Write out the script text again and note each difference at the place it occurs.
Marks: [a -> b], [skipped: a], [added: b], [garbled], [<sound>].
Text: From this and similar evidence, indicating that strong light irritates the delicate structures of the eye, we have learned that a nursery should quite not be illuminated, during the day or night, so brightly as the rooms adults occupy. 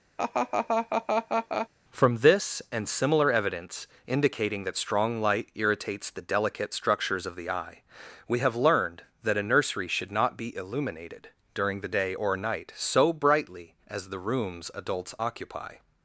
[laugh] From this and similar evidence, indicating that strong light irritates the delicate structures of the eye, we have learned that a nursery should [skipped: quite] not be illuminated, during the day or night, so brightly as the rooms adults occupy.